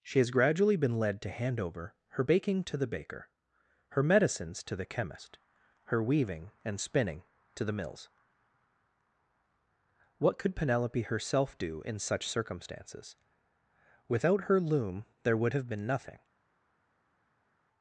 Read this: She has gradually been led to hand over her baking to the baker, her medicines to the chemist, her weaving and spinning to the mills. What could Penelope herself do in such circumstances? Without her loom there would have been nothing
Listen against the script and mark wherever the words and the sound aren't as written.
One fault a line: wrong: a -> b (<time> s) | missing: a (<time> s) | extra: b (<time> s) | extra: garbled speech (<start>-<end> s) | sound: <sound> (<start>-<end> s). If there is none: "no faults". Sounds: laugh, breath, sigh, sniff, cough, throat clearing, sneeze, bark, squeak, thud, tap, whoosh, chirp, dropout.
no faults